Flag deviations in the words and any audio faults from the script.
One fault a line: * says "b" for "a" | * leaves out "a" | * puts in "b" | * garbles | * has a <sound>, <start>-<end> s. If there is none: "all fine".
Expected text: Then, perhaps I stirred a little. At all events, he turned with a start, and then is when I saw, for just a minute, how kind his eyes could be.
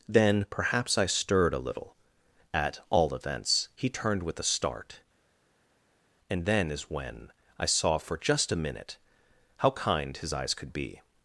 all fine